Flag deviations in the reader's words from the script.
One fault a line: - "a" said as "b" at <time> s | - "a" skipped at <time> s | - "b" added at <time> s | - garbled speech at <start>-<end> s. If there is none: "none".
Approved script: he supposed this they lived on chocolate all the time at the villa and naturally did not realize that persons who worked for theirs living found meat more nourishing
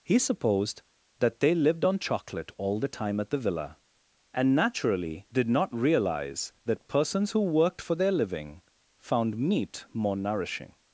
- "this" said as "that" at 1.2 s
- "theirs" said as "their" at 8.0 s